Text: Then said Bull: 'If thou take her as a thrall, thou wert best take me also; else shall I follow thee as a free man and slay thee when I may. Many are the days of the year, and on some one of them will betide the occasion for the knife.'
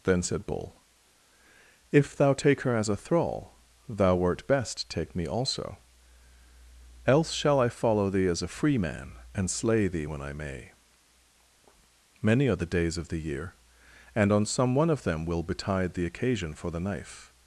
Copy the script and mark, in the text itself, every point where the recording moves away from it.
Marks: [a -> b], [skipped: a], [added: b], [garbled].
Then said Bull: 'If thou take her as a thrall, thou wert best take me also; else shall I follow thee as a free man and slay thee when I may. Many are the days of the year, and on some one of them will betide the occasion for the knife.'